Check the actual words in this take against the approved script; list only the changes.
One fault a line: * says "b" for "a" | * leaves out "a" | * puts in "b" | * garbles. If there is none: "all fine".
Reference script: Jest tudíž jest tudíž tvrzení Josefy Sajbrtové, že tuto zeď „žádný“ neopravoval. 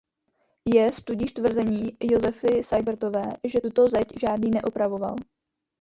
* leaves out "jest tudíž"